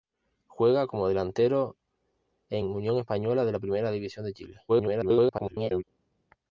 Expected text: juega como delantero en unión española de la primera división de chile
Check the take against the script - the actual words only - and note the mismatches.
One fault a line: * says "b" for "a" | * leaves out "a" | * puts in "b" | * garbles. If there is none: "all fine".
* garbles